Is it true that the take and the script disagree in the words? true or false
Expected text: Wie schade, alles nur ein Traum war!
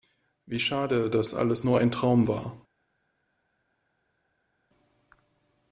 true